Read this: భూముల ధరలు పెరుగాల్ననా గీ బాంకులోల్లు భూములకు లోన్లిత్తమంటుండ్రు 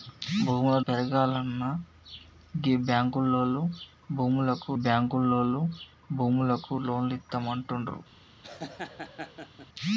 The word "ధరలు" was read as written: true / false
false